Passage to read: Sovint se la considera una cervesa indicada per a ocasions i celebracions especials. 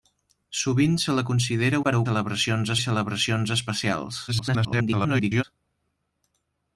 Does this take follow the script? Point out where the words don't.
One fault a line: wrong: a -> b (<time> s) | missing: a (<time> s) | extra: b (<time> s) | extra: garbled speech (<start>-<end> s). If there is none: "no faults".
missing: una cervesa indicada (1.8 s)
wrong: ocasions -> celebracions (2.1 s)
extra: garbled speech (4.3-5.4 s)